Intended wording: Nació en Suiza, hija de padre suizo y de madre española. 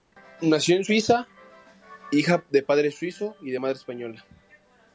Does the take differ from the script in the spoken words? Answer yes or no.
no